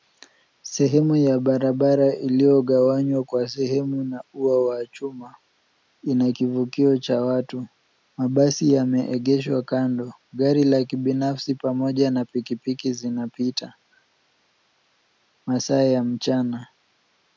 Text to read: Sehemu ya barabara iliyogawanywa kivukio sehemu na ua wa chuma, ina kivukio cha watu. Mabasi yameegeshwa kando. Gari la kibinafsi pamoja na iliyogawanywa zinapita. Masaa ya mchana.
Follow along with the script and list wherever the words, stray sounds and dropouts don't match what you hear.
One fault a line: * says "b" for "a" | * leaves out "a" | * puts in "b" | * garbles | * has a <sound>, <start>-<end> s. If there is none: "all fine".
* says "kwa" for "kivukio"
* says "pikipiki" for "iliyogawanywa"